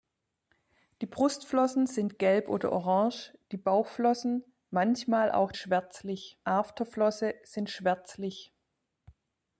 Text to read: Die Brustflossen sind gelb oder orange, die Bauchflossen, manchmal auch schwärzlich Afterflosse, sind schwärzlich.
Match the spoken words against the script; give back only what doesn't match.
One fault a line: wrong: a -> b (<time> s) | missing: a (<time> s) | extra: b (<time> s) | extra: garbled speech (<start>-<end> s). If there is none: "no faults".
no faults